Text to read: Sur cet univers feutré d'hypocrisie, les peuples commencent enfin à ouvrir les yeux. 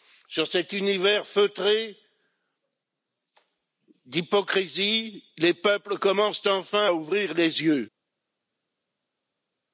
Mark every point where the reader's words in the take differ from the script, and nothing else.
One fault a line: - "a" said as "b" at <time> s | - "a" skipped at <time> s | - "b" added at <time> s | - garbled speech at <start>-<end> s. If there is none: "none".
none